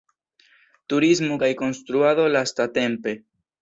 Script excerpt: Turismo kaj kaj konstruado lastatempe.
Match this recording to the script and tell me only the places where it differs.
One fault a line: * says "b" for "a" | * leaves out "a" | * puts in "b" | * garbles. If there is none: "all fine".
* leaves out "kaj"